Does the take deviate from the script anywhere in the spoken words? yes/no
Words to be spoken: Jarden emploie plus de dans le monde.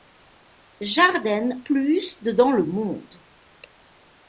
yes